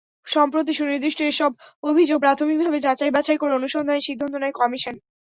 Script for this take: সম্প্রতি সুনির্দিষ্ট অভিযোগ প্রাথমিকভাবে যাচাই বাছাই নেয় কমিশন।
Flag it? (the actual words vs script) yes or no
yes